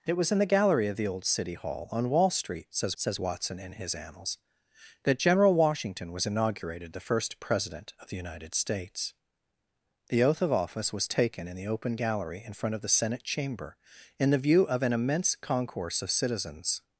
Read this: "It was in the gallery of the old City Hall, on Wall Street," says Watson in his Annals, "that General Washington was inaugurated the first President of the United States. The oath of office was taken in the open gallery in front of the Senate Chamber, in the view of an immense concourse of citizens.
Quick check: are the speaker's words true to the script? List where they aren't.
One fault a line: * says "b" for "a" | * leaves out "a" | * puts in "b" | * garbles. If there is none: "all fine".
* puts in "says"